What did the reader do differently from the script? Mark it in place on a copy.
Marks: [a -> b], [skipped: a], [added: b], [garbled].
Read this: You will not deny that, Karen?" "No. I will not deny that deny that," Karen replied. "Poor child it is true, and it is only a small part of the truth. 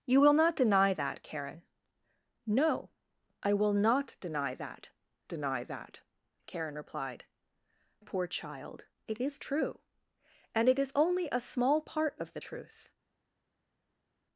You will not deny that, Karen?" "No. I will not deny that deny that," Karen replied. "Poor child it is true, and it is only a small part of the truth.